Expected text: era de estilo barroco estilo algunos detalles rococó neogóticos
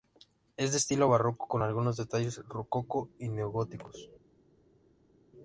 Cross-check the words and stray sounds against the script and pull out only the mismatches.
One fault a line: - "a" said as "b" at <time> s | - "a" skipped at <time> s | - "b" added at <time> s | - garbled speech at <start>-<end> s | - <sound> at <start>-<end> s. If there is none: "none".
- "era" said as "es" at 0.6 s
- "estilo" said as "con" at 1.5 s
- "y" added at 3.2 s